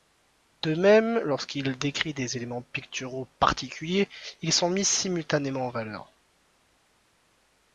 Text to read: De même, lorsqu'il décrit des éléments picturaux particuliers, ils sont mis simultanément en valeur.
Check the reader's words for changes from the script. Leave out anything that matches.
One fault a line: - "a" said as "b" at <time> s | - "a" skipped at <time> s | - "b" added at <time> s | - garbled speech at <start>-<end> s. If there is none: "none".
none